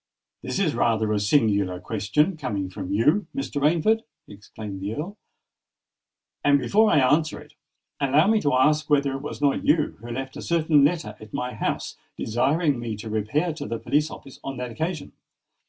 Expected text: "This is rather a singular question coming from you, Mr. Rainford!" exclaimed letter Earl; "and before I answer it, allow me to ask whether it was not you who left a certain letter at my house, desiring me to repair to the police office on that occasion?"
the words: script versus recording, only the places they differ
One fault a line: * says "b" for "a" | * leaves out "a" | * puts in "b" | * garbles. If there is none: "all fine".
* says "the" for "letter"